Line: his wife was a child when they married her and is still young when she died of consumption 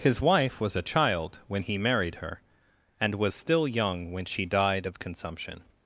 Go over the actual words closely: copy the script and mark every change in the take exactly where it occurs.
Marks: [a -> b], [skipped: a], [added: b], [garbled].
his wife was a child when [they -> he] married her and [is -> was] still young when she died of consumption